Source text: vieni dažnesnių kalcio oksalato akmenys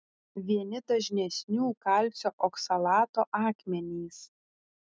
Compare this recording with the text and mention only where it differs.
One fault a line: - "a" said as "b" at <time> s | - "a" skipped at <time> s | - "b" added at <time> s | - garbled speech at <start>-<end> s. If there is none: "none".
none